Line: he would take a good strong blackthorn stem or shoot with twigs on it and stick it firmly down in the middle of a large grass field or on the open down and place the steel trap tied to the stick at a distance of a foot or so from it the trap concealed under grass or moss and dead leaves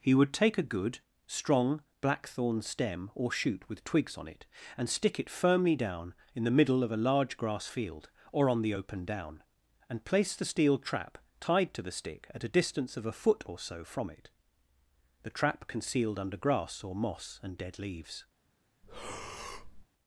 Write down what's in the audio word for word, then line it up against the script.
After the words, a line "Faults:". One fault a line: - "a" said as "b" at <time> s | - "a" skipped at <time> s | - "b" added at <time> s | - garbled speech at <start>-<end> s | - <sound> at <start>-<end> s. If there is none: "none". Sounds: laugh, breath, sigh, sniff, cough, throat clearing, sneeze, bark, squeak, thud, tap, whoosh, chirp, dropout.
he would take a good strong blackthorn stem or shoot with twigs on it and stick it firmly down in the middle of a large grass field or on the open down and place the steel trap tied to the stick at a distance of a foot or so from it the trap concealed under grass or moss and dead leaves
Faults:
- breath at 18.8-19.9 s